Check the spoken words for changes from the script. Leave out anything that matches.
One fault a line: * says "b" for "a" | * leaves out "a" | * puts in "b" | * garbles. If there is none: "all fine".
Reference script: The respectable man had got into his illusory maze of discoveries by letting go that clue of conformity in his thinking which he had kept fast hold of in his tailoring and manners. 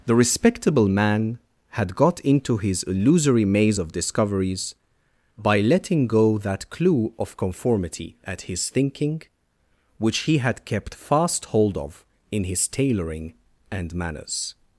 * says "at" for "in"